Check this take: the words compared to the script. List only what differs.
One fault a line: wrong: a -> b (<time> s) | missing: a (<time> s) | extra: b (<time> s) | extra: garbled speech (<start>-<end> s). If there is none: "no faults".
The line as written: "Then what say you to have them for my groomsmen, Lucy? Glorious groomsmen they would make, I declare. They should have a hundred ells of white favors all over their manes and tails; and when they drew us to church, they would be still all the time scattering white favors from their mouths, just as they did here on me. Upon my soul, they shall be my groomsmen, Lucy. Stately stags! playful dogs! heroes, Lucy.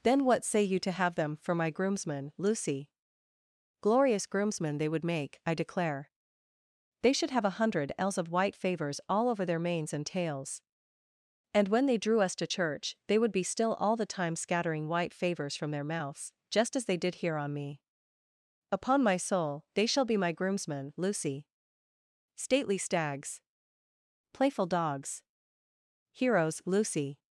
no faults